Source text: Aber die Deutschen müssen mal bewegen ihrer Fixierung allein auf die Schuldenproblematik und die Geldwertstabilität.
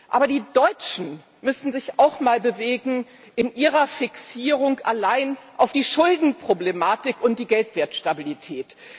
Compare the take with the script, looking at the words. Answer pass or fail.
fail